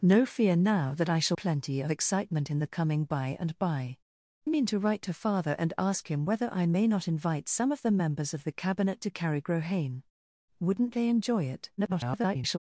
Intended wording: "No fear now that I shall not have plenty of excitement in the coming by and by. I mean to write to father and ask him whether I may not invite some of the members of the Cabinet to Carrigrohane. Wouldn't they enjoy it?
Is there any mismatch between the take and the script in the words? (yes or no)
yes